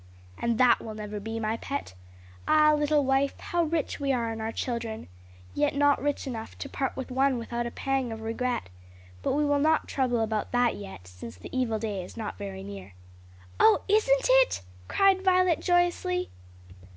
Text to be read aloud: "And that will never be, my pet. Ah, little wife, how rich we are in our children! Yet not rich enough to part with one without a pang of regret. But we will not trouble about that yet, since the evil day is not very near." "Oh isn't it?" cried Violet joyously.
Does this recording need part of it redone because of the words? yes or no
no